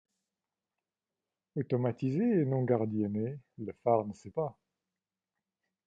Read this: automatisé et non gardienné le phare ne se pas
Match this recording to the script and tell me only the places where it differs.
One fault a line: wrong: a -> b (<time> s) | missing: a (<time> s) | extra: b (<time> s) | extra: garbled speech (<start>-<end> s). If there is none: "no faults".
no faults